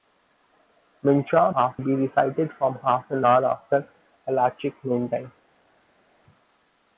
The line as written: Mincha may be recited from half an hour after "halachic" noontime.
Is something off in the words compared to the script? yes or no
yes